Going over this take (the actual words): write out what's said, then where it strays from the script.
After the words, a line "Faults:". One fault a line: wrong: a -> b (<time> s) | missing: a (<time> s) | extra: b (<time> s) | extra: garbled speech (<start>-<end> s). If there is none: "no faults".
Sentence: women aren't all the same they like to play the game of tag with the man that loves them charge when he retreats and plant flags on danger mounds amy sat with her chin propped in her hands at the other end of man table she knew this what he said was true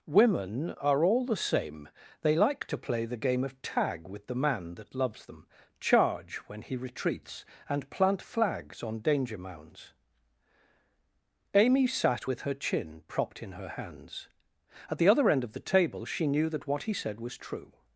women are all the same they like to play the game of tag with the man that loves them charge when he retreats and plant flags on danger mounds amy sat with her chin propped in her hands at the other end of the table she knew that what he said was true
Faults:
wrong: aren't -> are (0.7 s)
wrong: man -> the (15.5 s)
wrong: this -> that (16.5 s)